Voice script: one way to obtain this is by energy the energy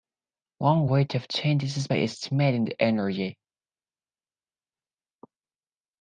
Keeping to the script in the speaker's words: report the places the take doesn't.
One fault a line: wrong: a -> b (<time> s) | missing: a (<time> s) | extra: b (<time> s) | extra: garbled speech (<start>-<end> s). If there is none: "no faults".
wrong: energy -> estimating (2.0 s)